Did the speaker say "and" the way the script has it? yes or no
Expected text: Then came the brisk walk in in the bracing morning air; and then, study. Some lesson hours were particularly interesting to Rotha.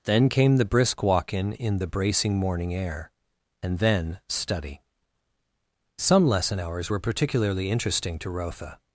yes